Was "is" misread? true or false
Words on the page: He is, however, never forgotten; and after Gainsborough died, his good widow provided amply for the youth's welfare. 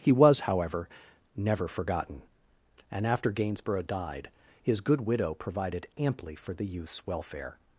true